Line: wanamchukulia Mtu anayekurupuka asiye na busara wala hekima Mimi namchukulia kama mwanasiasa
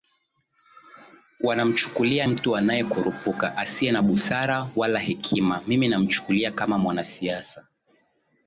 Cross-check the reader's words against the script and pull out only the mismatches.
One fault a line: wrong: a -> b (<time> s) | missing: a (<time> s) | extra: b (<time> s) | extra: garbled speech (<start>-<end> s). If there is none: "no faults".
no faults